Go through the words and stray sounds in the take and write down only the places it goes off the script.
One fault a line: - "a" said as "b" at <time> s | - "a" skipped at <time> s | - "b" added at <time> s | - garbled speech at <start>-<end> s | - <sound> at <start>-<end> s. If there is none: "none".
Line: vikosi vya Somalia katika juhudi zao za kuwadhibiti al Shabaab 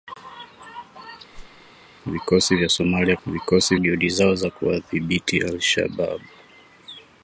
- whoosh at 1.3-1.7 s
- "katika" said as "vikosi" at 3.3 s